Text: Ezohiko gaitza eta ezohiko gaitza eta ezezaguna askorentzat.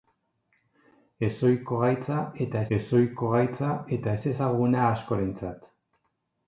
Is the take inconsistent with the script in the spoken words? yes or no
no